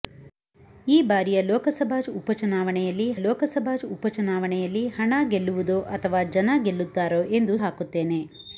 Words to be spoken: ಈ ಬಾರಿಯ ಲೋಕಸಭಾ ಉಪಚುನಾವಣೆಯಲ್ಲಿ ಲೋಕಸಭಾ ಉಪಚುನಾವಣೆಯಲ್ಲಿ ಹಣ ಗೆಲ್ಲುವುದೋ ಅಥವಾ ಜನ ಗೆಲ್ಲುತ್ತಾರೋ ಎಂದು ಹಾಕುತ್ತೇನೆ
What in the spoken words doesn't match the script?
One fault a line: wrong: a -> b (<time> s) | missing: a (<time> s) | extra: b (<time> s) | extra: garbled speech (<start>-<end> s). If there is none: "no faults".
no faults